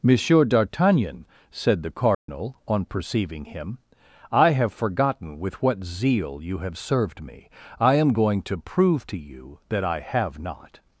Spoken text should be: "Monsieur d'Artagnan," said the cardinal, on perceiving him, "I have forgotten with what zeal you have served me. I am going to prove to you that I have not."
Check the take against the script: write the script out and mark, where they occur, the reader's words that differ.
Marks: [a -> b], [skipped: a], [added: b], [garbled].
"Monsieur d'Artagnan," said the cardinal, on perceiving him, "I have forgotten with what zeal you have served me. I am going to prove to you that I have not."